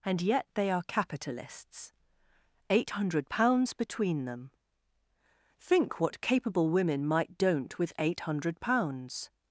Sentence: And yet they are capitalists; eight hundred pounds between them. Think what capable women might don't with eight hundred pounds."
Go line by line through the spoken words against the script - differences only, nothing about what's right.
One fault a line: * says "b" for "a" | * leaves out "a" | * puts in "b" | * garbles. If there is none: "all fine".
all fine